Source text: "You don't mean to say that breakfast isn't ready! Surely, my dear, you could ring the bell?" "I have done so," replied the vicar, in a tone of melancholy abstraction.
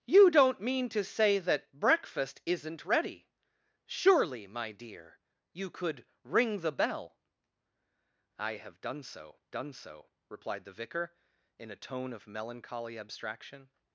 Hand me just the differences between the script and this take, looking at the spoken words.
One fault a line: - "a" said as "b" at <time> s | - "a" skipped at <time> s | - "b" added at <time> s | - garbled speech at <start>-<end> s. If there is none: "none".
- "done so" added at 9.5 s